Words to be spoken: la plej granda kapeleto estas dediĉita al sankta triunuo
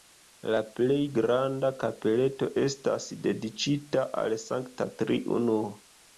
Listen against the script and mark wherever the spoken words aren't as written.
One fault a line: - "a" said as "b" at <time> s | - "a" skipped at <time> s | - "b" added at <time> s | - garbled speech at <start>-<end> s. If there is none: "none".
none